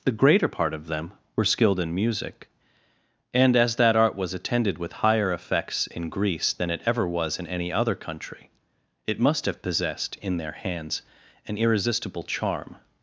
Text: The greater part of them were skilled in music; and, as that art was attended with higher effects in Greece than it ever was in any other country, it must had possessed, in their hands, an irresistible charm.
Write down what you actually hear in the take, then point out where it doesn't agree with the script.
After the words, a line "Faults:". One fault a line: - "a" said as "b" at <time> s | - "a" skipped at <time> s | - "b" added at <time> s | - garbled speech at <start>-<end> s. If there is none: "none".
The greater part of them were skilled in music; and, as that art was attended with higher effects in Greece than it ever was in any other country, it must have possessed, in their hands, an irresistible charm.
Faults:
- "had" said as "have" at 9.4 s